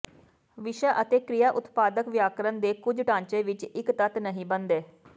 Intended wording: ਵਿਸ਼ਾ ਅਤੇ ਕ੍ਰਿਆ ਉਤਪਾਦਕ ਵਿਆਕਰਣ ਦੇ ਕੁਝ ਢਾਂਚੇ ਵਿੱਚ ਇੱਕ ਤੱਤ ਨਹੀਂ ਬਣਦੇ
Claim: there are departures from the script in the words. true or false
false